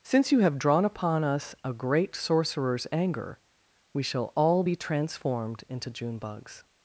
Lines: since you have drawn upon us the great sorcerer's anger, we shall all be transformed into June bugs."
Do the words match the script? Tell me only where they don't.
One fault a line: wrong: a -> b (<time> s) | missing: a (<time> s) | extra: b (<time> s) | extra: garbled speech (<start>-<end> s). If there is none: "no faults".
wrong: the -> a (1.6 s)